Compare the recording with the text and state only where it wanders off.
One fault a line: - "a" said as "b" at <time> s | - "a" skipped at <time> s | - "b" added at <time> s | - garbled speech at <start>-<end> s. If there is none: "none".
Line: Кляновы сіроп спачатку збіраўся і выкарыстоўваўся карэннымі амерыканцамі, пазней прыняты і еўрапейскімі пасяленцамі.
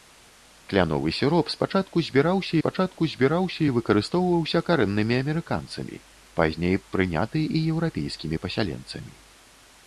- "спачатку збіраўся" added at 2.6 s